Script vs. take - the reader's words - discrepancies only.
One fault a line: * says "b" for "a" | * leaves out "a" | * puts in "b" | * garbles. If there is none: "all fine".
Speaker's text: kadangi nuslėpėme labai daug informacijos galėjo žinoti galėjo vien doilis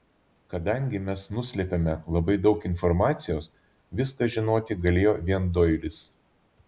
* puts in "mes"
* says "viską" for "galėjo"